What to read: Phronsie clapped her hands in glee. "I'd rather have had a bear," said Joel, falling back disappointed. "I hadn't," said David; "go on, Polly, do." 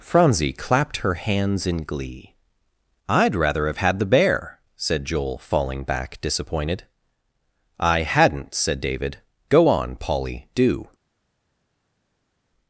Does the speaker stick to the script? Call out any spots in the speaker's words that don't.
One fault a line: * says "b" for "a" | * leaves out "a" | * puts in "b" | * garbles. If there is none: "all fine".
* says "the" for "a"